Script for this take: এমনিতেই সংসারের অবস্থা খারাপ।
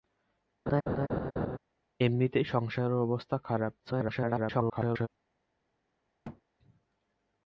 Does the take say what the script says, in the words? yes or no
no